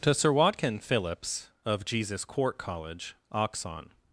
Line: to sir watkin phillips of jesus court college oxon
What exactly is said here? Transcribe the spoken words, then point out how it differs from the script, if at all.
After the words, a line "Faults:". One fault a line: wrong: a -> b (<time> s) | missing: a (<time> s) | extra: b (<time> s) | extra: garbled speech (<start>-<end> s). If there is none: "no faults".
to sir watkin phillips of jesus court college oxon
Faults:
no faults